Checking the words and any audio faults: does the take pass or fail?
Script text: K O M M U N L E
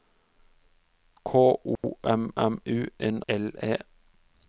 fail